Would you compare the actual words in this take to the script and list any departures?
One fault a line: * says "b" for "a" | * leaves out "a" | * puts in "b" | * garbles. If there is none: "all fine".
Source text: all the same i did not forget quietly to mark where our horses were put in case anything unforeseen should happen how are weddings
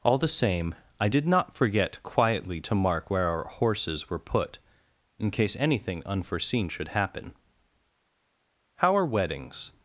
all fine